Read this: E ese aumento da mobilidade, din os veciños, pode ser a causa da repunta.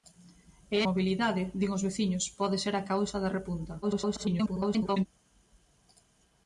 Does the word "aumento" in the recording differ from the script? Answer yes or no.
yes